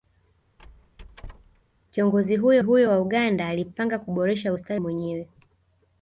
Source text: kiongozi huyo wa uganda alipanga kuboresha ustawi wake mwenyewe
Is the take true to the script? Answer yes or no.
no